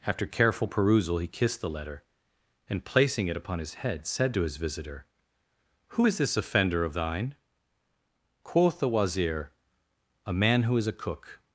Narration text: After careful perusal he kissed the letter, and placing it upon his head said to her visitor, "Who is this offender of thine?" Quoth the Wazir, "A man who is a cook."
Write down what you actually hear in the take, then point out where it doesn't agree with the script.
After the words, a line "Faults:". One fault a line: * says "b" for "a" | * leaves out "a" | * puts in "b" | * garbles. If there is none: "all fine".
After careful perusal he kissed the letter, and placing it upon his head said to his visitor, "Who is this offender of thine?" Quoth the Wazir, "A man who is a cook."
Faults:
* says "his" for "her"